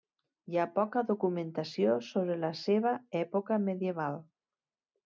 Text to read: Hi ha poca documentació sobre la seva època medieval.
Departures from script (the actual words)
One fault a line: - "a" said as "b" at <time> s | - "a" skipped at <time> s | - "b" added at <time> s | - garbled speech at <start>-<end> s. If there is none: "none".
none